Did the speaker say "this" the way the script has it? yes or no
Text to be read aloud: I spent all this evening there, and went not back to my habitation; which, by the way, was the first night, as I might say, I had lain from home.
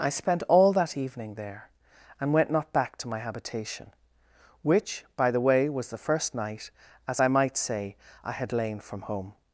no